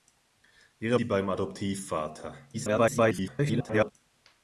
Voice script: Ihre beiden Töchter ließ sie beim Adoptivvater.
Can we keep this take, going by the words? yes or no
no